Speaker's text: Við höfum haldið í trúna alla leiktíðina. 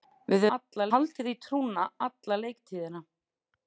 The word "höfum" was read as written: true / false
false